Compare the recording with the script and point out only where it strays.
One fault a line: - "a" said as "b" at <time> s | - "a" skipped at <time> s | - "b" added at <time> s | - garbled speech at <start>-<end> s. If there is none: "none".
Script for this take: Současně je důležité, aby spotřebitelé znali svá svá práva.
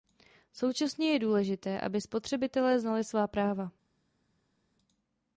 - "svá" skipped at 3.3 s